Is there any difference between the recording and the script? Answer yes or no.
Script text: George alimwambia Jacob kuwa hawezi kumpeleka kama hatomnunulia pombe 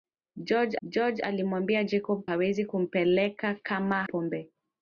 yes